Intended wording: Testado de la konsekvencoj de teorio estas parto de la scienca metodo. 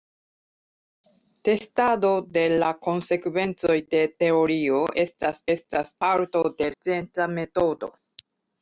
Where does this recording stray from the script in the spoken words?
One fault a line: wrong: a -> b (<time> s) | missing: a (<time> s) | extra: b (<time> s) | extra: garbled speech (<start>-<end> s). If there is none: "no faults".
extra: estas (5.6 s)
missing: la (6.7 s)